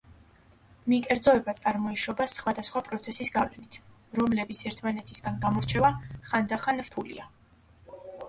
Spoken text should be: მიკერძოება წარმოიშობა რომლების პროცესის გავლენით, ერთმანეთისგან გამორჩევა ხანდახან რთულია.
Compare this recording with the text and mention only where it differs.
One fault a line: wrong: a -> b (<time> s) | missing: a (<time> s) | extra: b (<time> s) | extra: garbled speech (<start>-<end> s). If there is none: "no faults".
wrong: რომლების -> სხვადასხვა (2.3 s)
extra: რომლების (4.2 s)